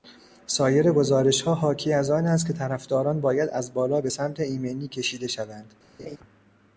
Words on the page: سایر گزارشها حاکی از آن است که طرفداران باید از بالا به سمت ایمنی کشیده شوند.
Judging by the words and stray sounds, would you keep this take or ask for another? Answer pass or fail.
fail